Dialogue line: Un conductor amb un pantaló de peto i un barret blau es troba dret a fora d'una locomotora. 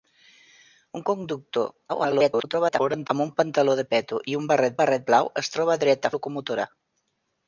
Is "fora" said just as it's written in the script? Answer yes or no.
no